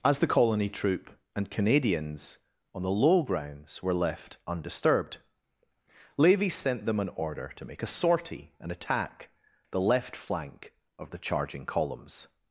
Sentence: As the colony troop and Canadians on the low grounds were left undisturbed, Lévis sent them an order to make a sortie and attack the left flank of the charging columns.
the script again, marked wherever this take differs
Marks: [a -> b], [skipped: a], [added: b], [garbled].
As the colony troop and Canadians on the low grounds were left undisturbed, Lévis sent them an order to make a sortie and attack the left flank of the charging columns.